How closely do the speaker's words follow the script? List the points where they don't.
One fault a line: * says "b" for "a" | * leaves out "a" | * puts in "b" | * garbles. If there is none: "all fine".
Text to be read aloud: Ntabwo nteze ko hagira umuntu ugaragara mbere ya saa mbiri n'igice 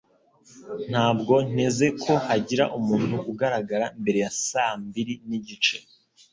all fine